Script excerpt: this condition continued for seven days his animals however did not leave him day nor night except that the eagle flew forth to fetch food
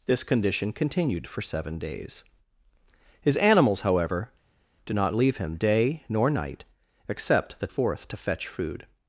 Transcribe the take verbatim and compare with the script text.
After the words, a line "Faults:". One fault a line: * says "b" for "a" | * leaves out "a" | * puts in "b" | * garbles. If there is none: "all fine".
this condition continued for seven days his animals however did not leave him day nor night except that forth to fetch food
Faults:
* leaves out "the eagle flew"